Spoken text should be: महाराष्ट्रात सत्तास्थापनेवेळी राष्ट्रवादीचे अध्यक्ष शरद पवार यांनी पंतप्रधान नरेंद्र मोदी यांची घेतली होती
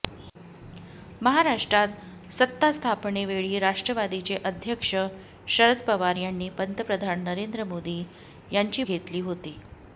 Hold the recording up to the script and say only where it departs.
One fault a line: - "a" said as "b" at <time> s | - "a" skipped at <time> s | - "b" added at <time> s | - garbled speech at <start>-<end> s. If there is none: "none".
none